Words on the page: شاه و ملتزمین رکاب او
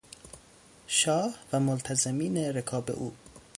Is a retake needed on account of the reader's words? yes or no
no